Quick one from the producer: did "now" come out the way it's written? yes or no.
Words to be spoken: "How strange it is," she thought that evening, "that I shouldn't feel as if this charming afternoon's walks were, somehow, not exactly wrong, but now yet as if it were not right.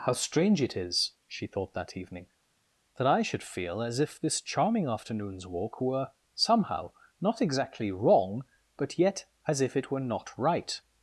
no